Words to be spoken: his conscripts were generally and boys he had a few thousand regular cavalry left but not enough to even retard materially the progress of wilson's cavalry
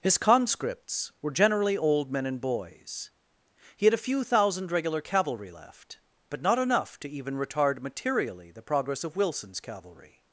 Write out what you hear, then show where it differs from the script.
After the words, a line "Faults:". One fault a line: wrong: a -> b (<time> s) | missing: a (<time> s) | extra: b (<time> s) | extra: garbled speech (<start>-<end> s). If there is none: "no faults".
his conscripts were generally old men and boys he had a few thousand regular cavalry left but not enough to even retard materially the progress of wilson's cavalry
Faults:
extra: old men (1.8 s)